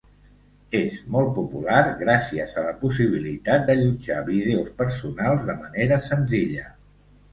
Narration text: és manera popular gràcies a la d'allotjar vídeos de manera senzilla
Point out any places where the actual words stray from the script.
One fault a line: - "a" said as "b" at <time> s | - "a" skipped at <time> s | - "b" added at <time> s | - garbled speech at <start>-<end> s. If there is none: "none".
- "manera" said as "molt" at 1.1 s
- "possibilitat" added at 2.9 s
- "personals" added at 4.8 s